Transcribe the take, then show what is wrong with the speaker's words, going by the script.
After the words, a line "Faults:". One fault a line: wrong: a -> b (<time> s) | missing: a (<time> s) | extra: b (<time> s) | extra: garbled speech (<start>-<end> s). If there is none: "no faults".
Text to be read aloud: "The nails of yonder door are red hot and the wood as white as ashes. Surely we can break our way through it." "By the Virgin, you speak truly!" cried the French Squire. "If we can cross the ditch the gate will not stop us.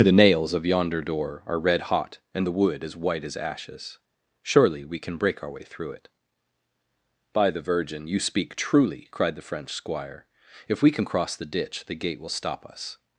"The nails of yonder door are red hot and the wood as white as ashes. Surely we can break our way through it." "By the Virgin, you speak truly!" cried the French Squire. "If we can cross the ditch the gate will stop us.
Faults:
missing: not (12.3 s)